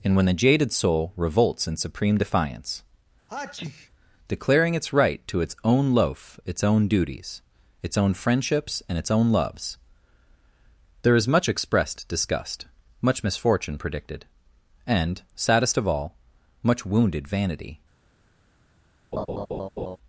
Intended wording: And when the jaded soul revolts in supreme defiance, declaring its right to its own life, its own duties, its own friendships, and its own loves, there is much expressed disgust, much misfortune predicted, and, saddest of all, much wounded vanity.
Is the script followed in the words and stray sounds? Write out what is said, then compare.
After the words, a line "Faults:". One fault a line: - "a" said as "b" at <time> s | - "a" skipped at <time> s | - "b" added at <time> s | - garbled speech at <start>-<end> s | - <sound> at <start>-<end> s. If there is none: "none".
And when the jaded soul revolts in supreme defiance, declaring its right to its own loaf, its own duties, its own friendships, and its own loves, there is much expressed disgust, much misfortune predicted, and, saddest of all, much wounded vanity.
Faults:
- sneeze at 3.3-3.9 s
- "life" said as "loaf" at 5.9 s
- laugh at 19.1-20.0 s